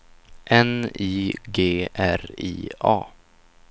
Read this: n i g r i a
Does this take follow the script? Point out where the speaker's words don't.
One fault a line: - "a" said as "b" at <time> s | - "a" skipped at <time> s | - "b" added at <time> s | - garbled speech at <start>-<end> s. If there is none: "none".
none